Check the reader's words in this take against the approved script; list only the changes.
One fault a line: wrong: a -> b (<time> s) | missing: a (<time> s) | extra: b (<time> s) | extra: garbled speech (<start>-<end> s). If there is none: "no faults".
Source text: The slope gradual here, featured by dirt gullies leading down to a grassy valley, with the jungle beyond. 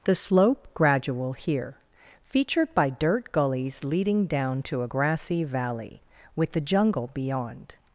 no faults